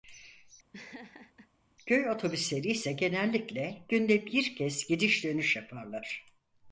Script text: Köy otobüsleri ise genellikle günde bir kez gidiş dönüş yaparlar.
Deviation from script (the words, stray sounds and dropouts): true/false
true